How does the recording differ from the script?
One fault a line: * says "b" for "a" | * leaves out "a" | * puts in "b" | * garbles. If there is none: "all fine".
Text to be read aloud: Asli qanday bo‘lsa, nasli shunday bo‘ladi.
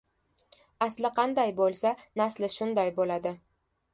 all fine